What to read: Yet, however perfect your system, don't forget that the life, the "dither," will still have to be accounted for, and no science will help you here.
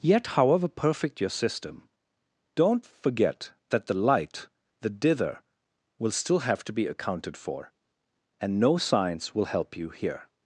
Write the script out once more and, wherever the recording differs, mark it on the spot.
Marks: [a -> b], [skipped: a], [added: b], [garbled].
Yet, however perfect your system, don't forget that the [life, -> light] the "dither," will still have to be accounted for, and no science will help you here.